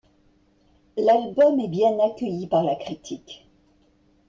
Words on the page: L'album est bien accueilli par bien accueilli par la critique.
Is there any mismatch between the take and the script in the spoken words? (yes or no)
yes